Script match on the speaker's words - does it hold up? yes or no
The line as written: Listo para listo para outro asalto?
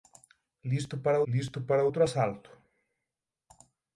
yes